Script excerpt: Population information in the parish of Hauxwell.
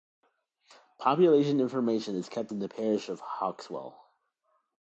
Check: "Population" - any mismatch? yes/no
no